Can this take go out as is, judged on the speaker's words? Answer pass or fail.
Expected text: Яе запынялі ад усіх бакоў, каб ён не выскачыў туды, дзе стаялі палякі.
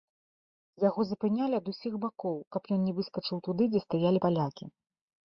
fail